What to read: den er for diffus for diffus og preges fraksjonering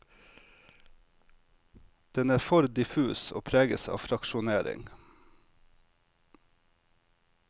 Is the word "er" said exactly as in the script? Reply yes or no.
yes